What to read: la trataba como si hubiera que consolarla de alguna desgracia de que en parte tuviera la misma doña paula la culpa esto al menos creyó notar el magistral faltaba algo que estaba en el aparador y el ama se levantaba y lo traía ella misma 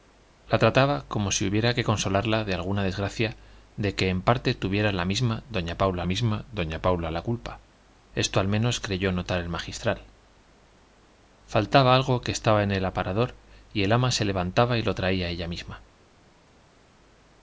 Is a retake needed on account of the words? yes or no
yes